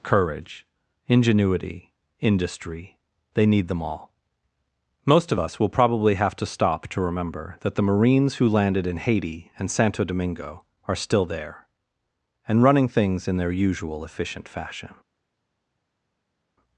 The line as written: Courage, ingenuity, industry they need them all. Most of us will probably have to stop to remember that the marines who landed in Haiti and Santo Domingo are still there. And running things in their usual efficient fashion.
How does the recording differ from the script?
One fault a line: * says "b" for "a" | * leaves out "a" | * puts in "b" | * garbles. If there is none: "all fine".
all fine